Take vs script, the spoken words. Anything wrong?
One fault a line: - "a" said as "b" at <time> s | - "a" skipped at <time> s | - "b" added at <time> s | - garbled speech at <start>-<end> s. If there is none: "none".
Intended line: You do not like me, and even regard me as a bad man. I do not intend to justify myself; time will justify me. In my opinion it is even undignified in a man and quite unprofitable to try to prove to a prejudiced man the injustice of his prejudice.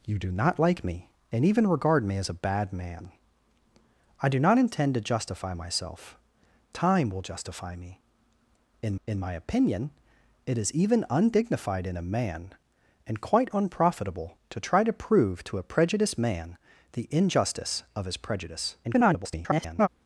- "in" added at 9.1 s
- garbled speech at 18.8-19.9 s